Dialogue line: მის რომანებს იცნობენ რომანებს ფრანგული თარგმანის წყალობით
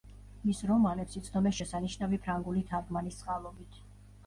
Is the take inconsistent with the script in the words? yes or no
yes